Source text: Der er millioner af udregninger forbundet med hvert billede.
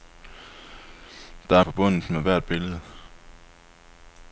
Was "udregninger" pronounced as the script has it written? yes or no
no